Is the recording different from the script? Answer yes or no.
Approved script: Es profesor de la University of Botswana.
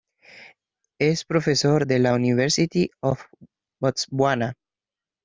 no